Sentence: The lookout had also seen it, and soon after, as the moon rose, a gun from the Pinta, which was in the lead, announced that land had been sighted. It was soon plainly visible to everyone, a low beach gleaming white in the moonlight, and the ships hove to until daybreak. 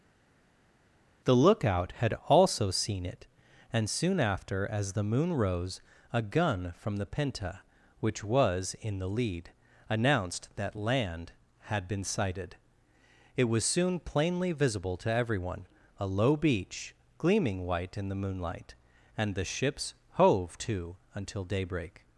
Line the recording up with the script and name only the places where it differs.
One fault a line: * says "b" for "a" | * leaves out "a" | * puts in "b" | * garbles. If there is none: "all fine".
all fine